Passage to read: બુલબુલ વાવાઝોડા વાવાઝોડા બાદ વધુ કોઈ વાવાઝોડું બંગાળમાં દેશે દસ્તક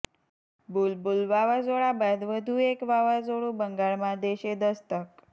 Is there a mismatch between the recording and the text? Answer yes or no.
yes